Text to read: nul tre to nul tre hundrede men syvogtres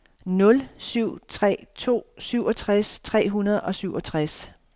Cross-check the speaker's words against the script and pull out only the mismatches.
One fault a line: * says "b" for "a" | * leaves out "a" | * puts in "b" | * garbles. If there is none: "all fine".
* puts in "syv"
* says "syvogtres" for "nul"
* says "og" for "men"